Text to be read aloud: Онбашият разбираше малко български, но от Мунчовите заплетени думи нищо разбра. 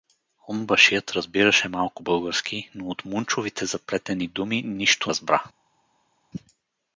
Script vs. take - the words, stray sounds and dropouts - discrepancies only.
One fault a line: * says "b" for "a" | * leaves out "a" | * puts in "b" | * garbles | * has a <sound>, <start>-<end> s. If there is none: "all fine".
all fine